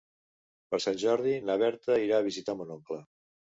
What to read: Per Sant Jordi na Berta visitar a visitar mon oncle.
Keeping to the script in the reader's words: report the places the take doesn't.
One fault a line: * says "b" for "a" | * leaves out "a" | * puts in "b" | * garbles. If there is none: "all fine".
* says "irà" for "visitar"